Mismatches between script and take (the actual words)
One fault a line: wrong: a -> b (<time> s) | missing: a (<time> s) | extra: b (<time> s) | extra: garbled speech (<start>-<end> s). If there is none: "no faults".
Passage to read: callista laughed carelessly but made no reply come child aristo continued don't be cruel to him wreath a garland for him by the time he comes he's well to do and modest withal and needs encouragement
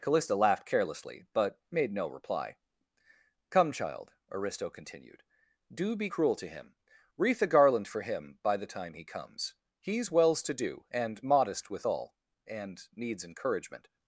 wrong: don't -> do (5.7 s)
wrong: well -> wells (10.1 s)